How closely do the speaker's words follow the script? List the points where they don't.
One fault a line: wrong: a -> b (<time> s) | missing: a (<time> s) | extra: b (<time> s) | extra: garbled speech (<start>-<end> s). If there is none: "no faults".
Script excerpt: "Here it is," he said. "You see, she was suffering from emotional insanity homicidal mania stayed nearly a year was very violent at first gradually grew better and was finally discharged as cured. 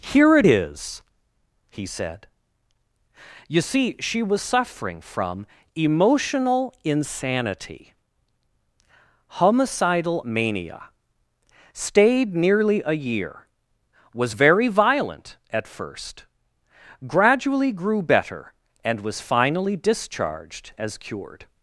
no faults